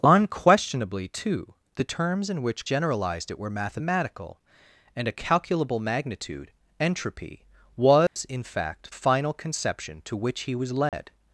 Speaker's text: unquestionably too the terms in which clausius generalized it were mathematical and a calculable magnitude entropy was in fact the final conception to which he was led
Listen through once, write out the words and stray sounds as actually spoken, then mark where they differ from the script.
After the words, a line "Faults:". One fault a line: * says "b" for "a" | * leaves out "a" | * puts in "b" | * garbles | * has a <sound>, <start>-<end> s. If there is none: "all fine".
unquestionably too the terms in which generalized it were mathematical and a calculable magnitude entropy was in fact final conception to which he was led
Faults:
* leaves out "clausius"
* has a dropout, 8.1-8.2 s
* leaves out "the"
* has a dropout, 10.9-10.9 s